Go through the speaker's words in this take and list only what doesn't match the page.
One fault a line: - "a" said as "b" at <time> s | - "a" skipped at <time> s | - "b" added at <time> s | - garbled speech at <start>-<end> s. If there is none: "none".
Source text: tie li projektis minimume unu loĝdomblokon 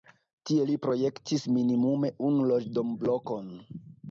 none